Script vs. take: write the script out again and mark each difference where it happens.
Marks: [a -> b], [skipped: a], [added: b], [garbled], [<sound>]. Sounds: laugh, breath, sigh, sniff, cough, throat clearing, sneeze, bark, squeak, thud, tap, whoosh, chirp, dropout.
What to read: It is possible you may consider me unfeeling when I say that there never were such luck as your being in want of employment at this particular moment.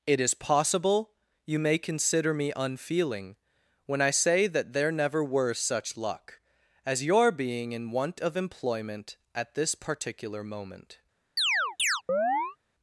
It is possible you may consider me unfeeling when I say that there never were such luck as your being in want of employment at this particular moment. [chirp]